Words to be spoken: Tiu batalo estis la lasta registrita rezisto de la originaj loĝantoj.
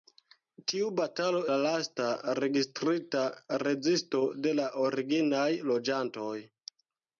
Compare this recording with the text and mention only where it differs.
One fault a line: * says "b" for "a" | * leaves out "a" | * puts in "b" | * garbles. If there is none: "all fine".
* leaves out "estis"